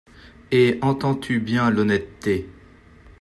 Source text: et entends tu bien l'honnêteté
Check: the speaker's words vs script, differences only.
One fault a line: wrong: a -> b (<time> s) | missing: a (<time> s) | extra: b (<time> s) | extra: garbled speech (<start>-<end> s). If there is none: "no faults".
no faults